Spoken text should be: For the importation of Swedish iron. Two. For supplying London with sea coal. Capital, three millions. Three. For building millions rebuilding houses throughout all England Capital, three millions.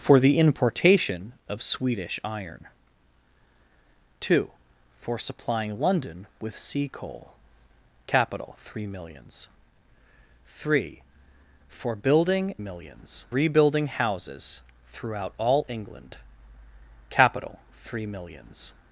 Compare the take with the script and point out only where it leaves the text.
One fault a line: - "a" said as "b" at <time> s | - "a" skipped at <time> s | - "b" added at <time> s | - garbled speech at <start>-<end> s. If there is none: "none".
none